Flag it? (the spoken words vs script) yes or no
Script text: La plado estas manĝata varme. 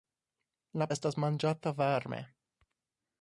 yes